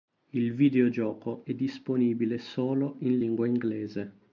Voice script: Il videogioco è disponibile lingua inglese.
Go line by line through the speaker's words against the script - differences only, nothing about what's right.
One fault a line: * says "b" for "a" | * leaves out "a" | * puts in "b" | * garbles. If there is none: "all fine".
* puts in "solo in"